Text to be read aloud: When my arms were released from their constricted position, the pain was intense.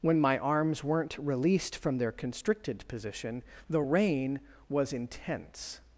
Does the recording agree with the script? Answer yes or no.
no